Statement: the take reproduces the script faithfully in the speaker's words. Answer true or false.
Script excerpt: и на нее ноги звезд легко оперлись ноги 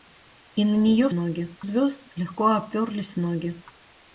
true